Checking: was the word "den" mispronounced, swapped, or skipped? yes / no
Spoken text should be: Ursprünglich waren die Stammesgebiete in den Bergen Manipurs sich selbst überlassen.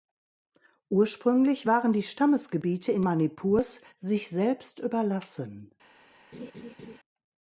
yes